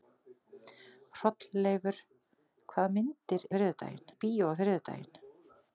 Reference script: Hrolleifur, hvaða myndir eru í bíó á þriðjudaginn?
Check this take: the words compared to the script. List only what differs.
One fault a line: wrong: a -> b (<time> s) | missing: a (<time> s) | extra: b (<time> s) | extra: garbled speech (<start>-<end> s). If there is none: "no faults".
wrong: eru -> þriðjudaginn (3.6 s)